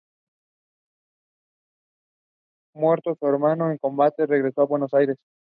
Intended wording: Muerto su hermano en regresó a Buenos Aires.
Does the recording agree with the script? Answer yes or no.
no